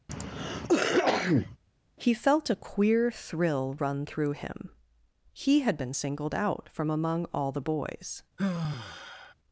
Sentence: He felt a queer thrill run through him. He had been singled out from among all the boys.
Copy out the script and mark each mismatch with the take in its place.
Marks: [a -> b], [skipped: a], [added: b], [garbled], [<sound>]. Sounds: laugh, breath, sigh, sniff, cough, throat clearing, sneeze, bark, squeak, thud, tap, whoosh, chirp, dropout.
[cough] He felt a queer thrill run through him. He had been singled out from among all the boys. [sigh]